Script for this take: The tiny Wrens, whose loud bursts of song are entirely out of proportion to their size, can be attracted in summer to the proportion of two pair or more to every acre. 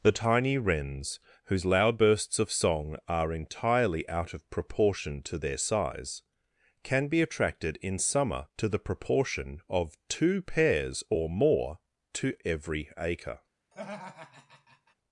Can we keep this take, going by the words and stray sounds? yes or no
no